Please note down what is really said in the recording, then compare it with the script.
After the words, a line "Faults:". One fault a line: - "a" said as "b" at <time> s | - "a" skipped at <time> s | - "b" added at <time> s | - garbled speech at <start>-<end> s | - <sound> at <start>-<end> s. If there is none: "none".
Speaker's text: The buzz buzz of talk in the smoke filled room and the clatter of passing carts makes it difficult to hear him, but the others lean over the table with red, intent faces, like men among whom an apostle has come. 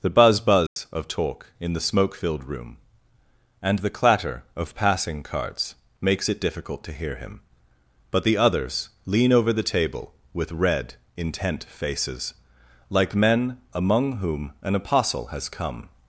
The buzz buzz of talk in the smoke filled room and the clatter of passing carts makes it difficult to hear him, but the others lean over the table with red, intent faces, like men among whom an apostle has come.
Faults:
- dropout at 0.7-0.8 s